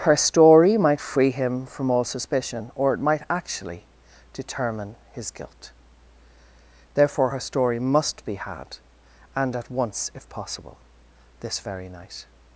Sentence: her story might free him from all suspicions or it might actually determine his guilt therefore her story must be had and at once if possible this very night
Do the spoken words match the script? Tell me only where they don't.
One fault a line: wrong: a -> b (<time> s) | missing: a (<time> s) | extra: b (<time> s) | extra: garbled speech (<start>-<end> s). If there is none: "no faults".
wrong: suspicions -> suspicion (2.0 s)